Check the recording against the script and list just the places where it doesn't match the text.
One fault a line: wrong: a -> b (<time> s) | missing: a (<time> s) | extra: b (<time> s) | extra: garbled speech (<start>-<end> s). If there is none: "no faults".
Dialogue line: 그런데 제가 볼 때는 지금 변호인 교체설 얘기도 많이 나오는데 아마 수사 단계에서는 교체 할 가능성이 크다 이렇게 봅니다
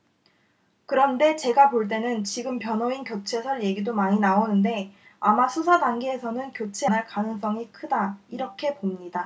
no faults